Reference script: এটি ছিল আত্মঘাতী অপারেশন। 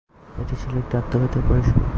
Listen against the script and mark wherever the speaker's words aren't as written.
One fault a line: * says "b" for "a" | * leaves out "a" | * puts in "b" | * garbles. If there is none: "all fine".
* puts in "একটি"